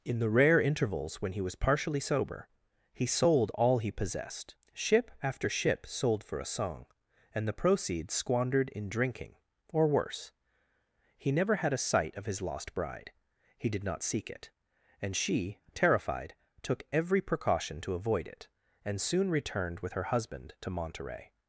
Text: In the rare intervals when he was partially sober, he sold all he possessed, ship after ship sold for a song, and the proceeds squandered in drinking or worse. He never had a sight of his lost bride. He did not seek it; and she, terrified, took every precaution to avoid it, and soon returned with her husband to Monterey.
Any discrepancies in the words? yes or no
no